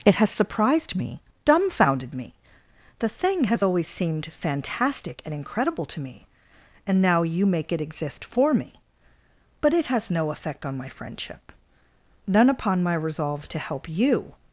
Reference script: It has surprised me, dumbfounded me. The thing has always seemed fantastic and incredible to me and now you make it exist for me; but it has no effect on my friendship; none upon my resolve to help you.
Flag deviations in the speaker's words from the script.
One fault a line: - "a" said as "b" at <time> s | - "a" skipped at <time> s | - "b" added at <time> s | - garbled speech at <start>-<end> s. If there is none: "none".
none